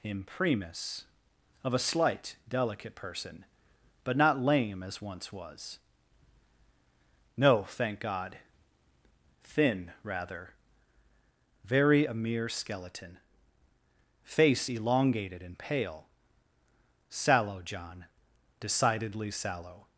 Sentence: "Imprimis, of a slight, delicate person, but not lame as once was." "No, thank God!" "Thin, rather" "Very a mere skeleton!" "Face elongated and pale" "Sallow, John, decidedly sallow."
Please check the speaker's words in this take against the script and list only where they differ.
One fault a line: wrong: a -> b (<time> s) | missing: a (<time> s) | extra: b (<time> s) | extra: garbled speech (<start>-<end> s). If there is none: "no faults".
no faults